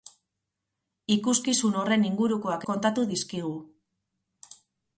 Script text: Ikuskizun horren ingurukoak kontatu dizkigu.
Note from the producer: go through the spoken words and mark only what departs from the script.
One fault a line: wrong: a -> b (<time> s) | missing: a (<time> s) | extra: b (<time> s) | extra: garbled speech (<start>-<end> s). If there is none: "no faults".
no faults